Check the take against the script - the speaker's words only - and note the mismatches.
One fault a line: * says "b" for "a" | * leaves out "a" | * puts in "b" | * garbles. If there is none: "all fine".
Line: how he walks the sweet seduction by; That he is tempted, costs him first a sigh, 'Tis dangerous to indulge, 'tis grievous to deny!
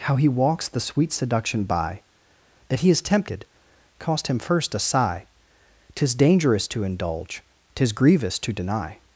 * says "cost" for "costs"